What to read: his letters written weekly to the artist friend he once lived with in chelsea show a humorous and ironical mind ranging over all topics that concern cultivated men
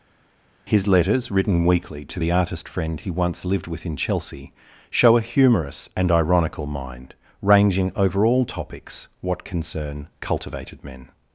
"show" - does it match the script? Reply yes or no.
yes